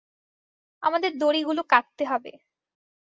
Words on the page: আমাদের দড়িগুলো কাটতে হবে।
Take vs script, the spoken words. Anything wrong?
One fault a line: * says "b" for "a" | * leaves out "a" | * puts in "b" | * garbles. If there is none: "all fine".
all fine